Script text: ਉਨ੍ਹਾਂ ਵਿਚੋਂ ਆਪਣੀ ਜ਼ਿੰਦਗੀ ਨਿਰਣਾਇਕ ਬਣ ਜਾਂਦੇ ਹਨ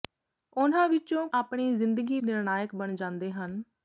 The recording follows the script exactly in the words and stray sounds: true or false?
true